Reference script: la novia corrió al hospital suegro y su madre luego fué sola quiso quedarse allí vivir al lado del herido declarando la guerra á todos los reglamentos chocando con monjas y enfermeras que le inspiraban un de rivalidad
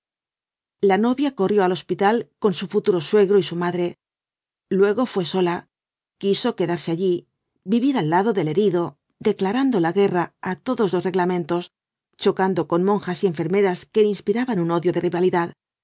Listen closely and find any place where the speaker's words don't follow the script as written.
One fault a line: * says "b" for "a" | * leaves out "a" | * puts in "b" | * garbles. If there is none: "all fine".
* puts in "con su futuro"
* puts in "odio"